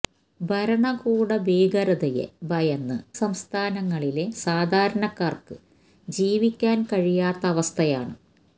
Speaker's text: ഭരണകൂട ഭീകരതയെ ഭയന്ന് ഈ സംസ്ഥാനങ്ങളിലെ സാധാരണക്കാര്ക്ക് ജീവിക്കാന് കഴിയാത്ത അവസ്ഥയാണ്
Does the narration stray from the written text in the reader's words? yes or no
yes